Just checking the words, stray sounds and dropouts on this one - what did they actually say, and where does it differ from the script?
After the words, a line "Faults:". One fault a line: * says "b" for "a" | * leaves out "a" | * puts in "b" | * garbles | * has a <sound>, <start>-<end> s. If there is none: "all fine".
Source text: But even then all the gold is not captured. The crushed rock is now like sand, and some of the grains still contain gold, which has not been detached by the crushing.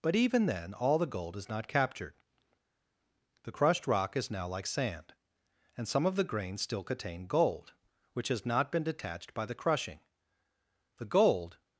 But even then all the gold is not captured. The crushed rock is now like sand, and some of the grains still contain gold, which has not been detached by the crushing. The gold
Faults:
* puts in "The gold"